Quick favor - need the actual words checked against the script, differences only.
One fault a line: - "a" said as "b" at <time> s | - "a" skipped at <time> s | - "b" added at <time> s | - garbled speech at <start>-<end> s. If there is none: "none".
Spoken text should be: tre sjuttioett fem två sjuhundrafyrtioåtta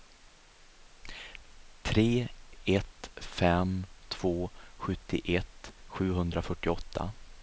- "sjuttioett" said as "ett" at 2.6 s
- "sjuttioett" added at 4.8 s